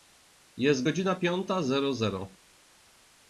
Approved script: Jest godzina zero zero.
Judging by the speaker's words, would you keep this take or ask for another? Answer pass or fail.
fail